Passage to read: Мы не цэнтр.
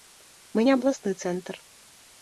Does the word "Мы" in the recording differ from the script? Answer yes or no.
no